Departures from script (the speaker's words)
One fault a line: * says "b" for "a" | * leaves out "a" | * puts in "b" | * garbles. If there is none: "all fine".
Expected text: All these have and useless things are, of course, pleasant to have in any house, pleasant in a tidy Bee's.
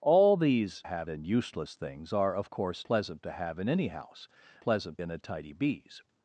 all fine